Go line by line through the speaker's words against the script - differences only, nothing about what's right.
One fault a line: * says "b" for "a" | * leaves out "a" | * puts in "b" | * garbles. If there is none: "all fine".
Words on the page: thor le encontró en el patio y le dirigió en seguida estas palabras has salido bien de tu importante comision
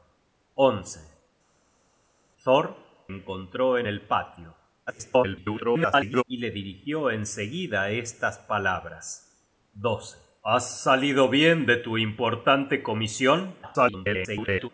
* leaves out "le"
* garbles
* garbles